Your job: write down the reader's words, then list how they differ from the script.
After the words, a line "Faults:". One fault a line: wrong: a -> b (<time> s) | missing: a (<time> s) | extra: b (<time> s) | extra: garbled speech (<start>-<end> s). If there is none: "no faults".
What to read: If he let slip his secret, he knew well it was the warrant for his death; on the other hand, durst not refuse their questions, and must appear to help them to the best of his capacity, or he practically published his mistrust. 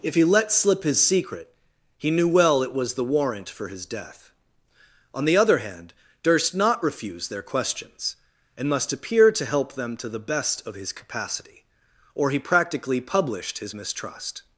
If he let slip his secret, he knew well it was the warrant for his death; on the other hand, durst not refuse their questions, and must appear to help them to the best of his capacity, or he practically published his mistrust.
Faults:
no faults